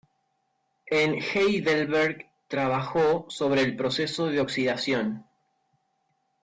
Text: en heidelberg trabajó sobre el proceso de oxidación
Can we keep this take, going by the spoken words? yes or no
yes